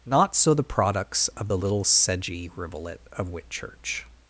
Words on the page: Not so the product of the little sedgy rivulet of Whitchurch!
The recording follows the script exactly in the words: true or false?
false